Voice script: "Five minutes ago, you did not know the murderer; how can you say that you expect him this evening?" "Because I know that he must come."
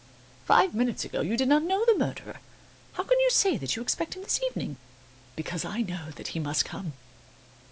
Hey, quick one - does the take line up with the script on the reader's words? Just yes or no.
yes